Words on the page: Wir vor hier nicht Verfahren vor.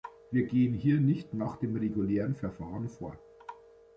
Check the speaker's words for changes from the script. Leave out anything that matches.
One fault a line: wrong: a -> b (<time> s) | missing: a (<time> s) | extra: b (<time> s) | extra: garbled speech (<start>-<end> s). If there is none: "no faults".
wrong: vor -> gehen (0.5 s)
extra: nach dem regulären (1.4 s)